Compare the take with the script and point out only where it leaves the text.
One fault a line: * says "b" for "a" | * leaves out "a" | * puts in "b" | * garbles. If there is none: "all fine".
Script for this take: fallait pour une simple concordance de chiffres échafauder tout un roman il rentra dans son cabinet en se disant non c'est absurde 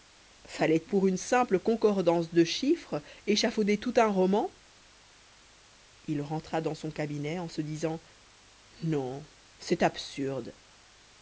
all fine